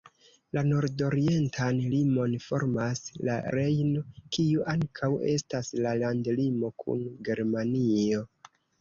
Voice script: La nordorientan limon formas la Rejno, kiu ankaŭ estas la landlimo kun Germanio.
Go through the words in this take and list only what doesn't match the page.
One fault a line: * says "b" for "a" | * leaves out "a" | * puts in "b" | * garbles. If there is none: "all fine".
all fine